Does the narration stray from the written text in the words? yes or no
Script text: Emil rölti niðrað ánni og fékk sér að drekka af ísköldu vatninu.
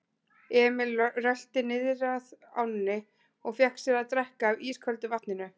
no